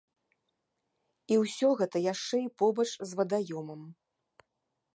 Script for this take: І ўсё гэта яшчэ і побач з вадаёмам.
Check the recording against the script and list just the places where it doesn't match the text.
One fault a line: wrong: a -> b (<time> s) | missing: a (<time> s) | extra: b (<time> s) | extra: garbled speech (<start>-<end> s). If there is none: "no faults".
no faults